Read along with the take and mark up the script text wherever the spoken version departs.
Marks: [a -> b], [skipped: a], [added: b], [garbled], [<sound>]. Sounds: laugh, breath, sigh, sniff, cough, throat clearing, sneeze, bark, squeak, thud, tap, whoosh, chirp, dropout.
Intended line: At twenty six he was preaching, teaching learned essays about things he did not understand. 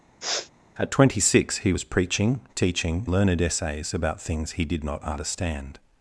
[sniff] At twenty six he was preaching, teaching learned essays about things he did not understand.